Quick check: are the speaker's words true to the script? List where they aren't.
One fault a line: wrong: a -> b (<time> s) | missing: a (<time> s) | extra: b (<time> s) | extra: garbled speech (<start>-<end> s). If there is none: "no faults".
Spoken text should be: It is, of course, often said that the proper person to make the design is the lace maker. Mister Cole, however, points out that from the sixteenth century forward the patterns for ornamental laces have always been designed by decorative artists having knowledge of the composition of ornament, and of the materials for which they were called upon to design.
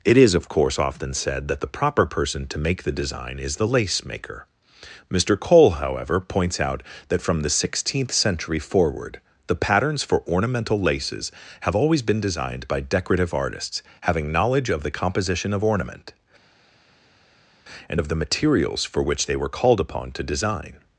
no faults